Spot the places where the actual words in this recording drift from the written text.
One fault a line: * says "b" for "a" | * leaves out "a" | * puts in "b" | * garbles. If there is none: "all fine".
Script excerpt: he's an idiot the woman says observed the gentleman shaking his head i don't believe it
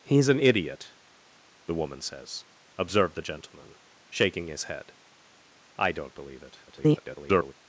* garbles